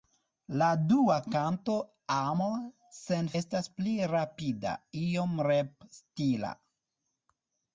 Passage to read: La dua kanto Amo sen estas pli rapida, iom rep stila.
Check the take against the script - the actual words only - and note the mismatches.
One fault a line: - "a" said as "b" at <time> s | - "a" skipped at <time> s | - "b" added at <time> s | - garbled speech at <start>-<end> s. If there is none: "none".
none